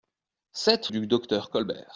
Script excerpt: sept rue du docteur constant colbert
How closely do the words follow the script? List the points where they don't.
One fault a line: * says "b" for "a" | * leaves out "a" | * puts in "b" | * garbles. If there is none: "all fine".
* leaves out "rue"
* leaves out "constant"